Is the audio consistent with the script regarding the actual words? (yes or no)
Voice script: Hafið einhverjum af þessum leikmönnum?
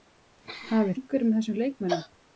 yes